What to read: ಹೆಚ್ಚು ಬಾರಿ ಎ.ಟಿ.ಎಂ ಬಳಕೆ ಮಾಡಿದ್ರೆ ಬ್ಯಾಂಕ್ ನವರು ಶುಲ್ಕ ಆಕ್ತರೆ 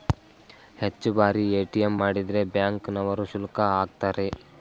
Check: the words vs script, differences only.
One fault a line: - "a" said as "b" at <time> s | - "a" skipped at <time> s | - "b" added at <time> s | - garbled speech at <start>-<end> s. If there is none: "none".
- "ಬಳಕೆ" skipped at 1.9 s